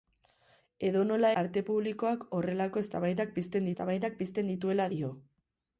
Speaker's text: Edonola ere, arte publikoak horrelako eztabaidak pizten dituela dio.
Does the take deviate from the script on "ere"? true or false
true